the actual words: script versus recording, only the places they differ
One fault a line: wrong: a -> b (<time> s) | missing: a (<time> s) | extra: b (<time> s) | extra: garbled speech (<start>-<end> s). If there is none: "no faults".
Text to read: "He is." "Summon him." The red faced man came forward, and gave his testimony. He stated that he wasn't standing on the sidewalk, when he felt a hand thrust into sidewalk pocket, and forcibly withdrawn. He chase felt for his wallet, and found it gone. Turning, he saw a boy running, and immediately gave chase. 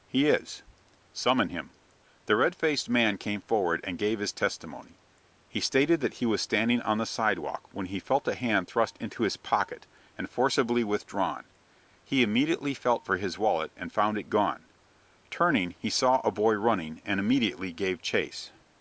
wrong: wasn't -> was (6.2 s)
wrong: sidewalk -> his (9.2 s)
wrong: chase -> immediately (12.2 s)